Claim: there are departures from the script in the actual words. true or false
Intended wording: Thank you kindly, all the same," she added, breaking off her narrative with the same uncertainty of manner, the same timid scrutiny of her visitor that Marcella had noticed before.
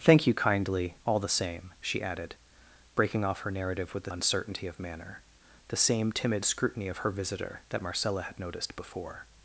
true